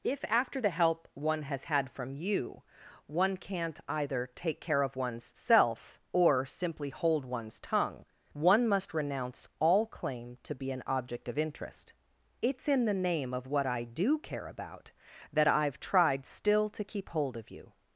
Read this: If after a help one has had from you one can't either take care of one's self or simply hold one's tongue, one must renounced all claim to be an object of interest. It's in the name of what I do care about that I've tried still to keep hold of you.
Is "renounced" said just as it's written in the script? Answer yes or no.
no